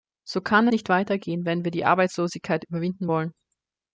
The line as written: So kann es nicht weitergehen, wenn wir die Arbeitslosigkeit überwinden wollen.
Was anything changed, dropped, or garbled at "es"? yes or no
yes